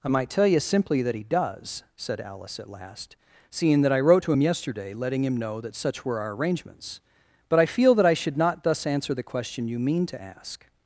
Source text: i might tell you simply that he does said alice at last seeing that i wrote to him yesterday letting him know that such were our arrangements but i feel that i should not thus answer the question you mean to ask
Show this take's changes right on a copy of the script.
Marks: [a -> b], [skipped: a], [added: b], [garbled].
i might tell you simply that he does said alice at last seeing that i wrote to him yesterday letting him know that such were our arrangements but i feel that i should not thus answer the question you mean to ask